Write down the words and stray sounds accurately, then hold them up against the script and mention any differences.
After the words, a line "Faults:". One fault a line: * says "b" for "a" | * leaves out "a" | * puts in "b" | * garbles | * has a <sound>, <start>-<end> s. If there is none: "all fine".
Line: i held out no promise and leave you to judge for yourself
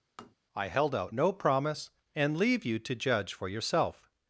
i held out no promise and leave you to judge for yourself
Faults:
* has a tap, 0.2-0.4 s